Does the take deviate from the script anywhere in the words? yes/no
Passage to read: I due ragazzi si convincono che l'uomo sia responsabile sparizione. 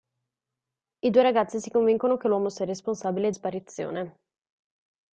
no